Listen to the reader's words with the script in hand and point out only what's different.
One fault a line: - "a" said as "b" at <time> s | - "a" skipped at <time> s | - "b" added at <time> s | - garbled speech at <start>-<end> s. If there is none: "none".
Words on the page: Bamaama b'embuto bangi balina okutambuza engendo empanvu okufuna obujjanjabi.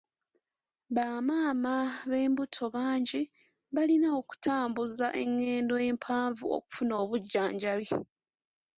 none